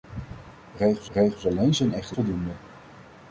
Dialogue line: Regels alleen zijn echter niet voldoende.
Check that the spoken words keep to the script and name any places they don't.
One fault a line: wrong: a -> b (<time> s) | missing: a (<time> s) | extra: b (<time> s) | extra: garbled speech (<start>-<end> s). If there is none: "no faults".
extra: regels (1.1 s)
missing: niet (2.2 s)